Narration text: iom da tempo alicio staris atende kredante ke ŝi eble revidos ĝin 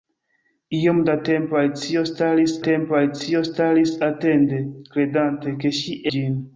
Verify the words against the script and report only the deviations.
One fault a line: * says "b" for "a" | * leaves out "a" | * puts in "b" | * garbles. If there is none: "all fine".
* puts in "tempo alicio staris"
* leaves out "eble revidos"